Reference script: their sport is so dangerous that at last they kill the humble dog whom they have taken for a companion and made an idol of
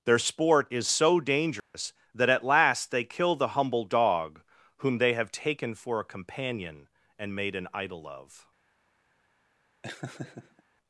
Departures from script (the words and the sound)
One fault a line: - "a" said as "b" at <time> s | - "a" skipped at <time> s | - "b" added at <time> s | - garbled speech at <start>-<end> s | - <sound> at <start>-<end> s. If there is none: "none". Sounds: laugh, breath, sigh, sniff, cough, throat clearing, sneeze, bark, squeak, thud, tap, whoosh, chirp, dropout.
- dropout at 1.6-1.7 s
- laugh at 9.8-10.6 s